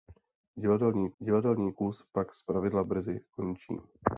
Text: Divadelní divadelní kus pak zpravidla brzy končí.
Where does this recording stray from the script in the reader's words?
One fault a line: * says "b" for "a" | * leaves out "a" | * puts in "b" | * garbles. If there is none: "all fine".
all fine